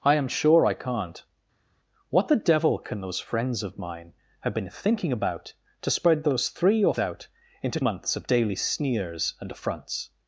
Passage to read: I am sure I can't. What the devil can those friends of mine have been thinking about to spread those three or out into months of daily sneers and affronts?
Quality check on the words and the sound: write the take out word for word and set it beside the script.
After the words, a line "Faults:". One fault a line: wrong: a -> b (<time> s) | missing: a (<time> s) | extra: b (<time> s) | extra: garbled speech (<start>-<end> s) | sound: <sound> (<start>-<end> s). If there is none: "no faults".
I am sure I can't. What the devil can those friends of mine have been thinking about to spread those three or out into months of daily sneers and affronts?
Faults:
no faults